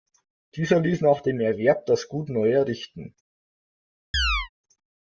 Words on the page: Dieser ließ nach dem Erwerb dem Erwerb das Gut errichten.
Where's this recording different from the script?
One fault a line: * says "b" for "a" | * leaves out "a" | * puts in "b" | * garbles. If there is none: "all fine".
* leaves out "dem Erwerb"
* puts in "neu"